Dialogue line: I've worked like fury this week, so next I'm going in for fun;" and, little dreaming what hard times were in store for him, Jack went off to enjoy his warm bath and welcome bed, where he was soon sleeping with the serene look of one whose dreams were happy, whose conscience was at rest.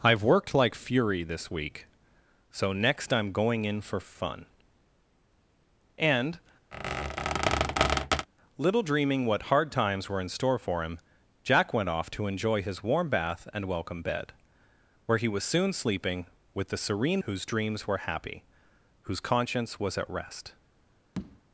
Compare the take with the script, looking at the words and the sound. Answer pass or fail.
fail